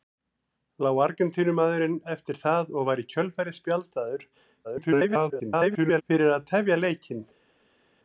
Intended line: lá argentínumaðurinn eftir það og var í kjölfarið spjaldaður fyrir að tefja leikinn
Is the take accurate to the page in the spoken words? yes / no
no